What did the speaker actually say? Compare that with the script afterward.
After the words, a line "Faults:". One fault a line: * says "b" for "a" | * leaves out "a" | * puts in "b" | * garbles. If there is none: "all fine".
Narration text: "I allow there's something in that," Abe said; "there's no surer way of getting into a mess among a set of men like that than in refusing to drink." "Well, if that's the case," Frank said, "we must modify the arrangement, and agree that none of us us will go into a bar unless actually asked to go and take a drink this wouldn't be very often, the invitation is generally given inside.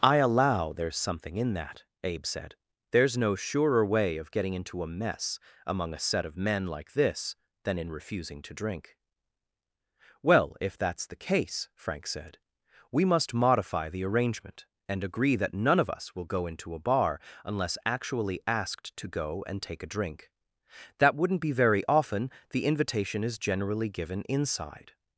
"I allow there's something in that," Abe said; "there's no surer way of getting into a mess among a set of men like this than in refusing to drink." "Well, if that's the case," Frank said, "we must modify the arrangement, and agree that none of us will go into a bar unless actually asked to go and take a drink that wouldn't be very often, the invitation is generally given inside.
Faults:
* says "this" for "that"
* leaves out "us"
* says "that" for "this"